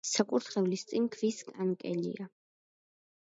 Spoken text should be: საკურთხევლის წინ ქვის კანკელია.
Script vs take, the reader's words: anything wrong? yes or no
no